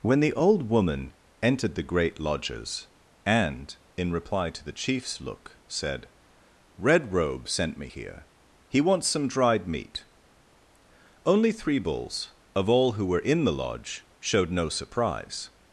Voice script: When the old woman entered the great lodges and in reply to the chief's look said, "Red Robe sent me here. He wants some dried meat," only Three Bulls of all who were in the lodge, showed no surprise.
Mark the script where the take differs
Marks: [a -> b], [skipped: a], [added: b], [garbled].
When the old woman entered the great lodges and in reply to the chief's look said, "Red Robe sent me here. He wants some dried meat," only Three Bulls of all who were in the lodge, showed no surprise.